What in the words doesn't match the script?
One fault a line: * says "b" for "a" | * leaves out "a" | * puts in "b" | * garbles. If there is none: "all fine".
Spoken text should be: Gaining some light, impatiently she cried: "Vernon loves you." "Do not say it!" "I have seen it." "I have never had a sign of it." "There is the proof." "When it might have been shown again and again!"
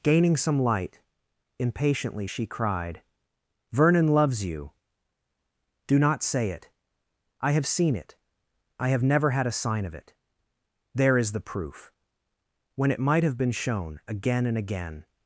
all fine